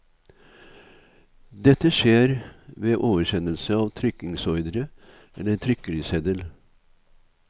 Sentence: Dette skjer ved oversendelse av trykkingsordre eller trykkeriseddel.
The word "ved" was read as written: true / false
true